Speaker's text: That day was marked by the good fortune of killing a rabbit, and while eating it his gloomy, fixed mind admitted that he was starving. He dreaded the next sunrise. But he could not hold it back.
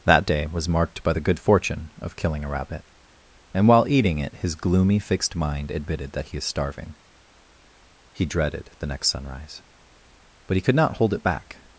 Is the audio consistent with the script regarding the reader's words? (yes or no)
no